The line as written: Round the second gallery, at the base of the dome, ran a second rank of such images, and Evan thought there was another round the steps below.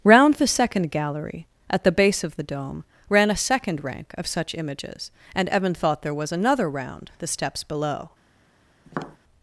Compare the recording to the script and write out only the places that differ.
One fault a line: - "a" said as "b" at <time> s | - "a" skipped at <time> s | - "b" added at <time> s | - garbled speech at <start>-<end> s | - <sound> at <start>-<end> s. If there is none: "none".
- tap at 8.9-9.2 s